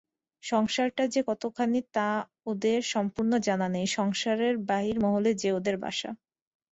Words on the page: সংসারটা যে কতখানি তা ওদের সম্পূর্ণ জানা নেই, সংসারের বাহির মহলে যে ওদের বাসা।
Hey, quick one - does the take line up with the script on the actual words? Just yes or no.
yes